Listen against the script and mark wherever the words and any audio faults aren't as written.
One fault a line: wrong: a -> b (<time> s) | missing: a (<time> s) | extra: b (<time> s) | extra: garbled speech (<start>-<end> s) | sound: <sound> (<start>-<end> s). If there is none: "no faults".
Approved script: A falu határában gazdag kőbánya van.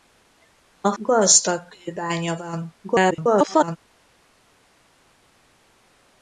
missing: falu határában (0.9 s)
extra: garbled speech (2.8-3.8 s)